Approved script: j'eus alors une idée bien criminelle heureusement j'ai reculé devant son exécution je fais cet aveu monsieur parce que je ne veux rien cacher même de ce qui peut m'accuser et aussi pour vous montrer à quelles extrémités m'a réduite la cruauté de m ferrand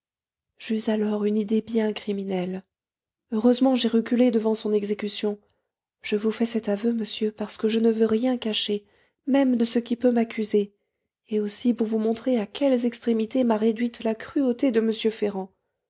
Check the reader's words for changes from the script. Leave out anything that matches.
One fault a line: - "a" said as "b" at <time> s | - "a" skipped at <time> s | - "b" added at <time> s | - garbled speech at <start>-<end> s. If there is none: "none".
- "vous" added at 6.2 s